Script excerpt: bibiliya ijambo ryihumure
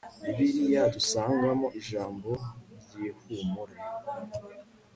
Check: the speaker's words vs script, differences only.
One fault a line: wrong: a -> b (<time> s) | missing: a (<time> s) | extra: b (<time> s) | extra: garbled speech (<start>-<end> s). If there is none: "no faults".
extra: dusangamo (0.9 s)